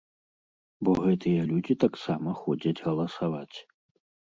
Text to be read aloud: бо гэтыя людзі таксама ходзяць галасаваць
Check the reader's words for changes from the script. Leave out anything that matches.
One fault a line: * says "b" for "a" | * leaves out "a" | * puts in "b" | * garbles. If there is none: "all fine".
all fine